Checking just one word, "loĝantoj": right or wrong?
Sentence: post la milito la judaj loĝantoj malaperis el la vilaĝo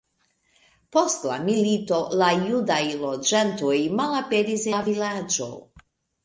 right